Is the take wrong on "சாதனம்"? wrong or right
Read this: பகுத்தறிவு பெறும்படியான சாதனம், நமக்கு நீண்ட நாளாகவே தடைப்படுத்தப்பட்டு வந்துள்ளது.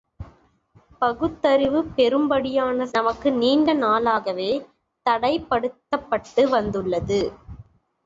wrong